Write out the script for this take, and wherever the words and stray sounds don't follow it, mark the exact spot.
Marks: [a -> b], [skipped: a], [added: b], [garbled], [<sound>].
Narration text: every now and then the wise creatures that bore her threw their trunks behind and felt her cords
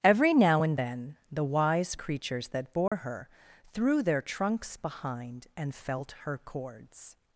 every now and then the wise creatures that bore [dropout] her threw their trunks behind and felt her cords